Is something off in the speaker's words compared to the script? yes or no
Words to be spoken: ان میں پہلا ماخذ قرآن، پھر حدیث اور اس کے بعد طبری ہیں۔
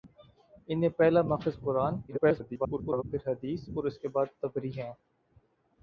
yes